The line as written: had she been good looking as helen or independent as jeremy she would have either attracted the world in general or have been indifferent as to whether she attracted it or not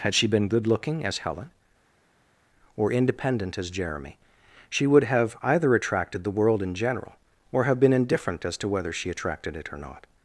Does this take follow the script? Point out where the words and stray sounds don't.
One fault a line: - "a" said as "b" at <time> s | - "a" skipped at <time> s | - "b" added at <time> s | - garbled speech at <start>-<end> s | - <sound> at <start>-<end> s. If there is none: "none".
none